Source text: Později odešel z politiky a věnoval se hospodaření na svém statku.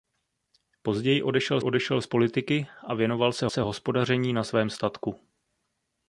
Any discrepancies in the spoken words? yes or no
yes